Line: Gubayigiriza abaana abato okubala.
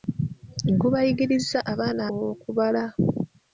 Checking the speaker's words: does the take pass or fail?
fail